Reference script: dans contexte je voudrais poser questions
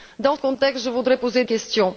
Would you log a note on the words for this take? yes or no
no